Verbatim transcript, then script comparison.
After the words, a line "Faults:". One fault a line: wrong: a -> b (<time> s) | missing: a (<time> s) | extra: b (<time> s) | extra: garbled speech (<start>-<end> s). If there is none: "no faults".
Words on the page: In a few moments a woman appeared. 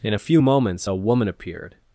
In a few moments a woman appeared.
Faults:
no faults